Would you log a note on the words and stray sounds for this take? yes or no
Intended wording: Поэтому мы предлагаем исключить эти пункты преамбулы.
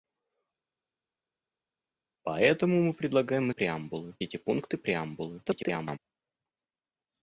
yes